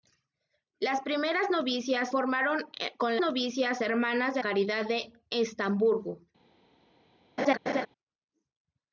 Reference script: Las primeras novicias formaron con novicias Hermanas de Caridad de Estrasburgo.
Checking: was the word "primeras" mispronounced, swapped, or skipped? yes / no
no